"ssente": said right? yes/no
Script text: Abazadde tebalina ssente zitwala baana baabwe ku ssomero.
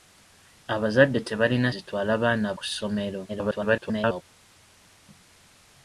no